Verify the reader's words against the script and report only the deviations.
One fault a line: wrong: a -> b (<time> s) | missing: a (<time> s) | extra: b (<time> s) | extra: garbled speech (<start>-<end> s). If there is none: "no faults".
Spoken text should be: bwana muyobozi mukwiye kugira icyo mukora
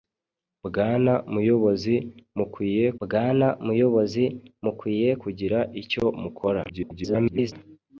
extra: bwana muyobozi mukwiye (3.0 s)
extra: garbled speech (6.7-7.5 s)